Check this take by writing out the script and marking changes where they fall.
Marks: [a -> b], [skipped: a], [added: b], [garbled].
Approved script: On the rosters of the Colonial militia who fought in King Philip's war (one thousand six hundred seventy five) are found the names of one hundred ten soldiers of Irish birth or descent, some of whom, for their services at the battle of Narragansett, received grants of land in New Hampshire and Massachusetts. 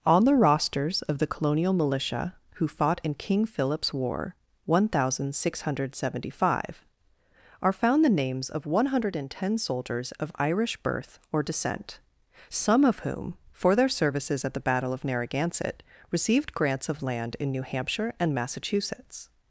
On the rosters of the Colonial militia who fought in King Philip's war (one thousand six hundred seventy five) are found the names of one hundred ten soldiers of Irish birth or descent, some of whom, for their services at the battle of Narragansett, received grants of land in New Hampshire and Massachusetts.